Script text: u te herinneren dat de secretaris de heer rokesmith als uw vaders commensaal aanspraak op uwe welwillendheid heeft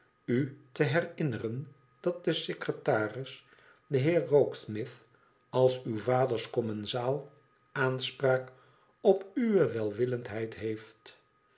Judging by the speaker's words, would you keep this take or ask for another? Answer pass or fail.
pass